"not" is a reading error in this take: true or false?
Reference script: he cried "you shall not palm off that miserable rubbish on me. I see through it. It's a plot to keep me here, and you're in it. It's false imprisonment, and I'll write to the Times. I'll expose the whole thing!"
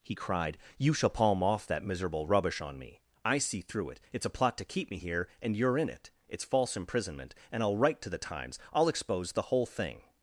true